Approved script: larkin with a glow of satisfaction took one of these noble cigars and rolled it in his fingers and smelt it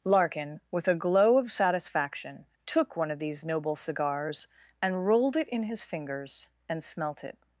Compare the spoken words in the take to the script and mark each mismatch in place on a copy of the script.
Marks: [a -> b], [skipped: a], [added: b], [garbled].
larkin with a glow of satisfaction took one of these noble cigars and rolled it in his fingers and smelt it